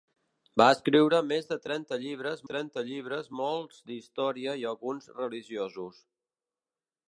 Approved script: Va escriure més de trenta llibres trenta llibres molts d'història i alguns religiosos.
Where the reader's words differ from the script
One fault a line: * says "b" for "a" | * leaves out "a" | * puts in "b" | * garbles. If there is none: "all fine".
all fine